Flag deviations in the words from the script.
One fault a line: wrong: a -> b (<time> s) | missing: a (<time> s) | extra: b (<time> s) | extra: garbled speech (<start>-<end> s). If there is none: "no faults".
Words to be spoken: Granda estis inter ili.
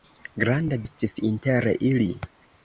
no faults